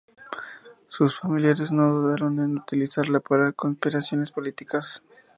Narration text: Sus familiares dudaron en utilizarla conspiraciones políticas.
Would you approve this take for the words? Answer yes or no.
no